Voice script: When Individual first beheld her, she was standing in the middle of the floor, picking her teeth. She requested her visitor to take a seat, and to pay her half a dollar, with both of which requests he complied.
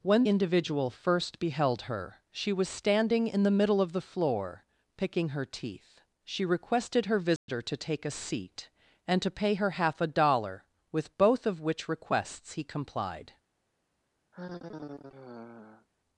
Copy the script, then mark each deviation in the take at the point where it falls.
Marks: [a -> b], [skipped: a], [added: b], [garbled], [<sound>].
When Individual first beheld her, she was standing in the middle of the floor, picking her teeth. She requested her visitor [dropout] to take a seat, and to pay her half a dollar, with both of which requests he complied. [sigh]